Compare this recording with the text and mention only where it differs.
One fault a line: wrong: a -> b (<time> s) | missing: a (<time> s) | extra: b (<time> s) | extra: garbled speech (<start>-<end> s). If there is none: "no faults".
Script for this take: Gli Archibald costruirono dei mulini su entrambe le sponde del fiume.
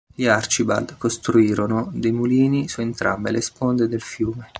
no faults